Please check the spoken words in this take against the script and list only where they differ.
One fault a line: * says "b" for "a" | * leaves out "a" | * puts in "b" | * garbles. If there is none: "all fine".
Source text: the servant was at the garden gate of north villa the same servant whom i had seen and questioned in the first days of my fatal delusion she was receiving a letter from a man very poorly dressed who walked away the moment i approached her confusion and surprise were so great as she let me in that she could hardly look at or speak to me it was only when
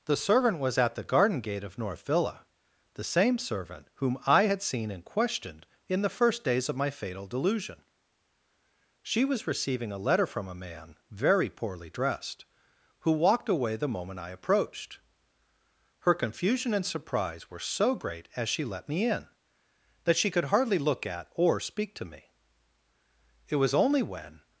all fine